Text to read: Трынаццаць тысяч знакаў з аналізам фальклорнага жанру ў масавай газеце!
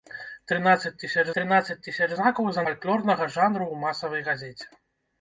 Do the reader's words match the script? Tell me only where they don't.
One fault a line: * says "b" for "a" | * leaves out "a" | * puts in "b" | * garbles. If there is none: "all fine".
* puts in "трынаццаць тысяч"
* leaves out "аналізам"